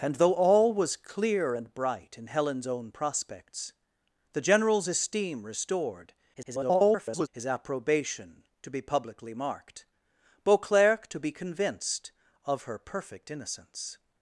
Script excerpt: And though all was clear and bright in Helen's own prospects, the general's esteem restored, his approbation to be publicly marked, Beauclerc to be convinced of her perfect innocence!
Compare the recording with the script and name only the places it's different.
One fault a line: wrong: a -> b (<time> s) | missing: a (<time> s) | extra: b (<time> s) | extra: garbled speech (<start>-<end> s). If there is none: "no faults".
extra: garbled speech (6.3-7.3 s)